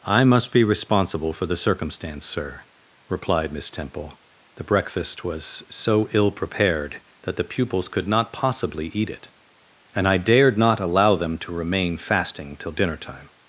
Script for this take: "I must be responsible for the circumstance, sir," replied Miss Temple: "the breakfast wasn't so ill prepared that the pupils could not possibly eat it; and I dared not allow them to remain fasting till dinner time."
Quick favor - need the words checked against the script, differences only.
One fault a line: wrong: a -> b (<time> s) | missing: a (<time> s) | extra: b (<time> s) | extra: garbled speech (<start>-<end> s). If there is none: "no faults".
wrong: wasn't -> was (5.3 s)